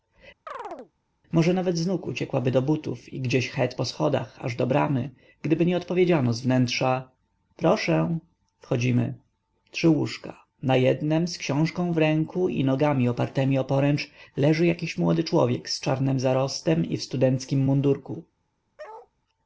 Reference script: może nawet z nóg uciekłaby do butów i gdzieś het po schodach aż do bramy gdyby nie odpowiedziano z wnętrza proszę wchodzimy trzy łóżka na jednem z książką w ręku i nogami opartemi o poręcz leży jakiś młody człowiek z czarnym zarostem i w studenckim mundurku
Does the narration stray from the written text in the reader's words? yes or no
no